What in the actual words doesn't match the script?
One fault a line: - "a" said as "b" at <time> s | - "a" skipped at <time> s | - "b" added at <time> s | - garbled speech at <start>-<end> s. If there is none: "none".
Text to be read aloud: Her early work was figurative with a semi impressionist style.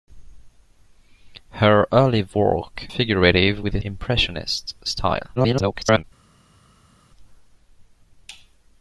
- "was" skipped at 2.9 s
- "semi" skipped at 3.8 s
- garbled speech at 5.4-6.0 s